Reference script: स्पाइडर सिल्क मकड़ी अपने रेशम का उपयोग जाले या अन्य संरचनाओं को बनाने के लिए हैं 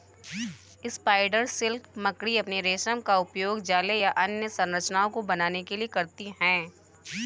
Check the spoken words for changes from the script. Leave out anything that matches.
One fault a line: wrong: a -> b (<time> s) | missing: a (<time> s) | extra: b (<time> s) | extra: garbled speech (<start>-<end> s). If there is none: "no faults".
extra: करती (5.9 s)